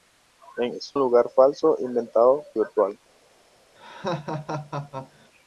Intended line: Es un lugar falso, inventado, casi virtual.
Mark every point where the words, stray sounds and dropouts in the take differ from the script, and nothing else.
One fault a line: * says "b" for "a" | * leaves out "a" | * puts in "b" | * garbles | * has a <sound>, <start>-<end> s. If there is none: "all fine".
* leaves out "un"
* leaves out "casi"
* has a laugh, 3.8-5.3 s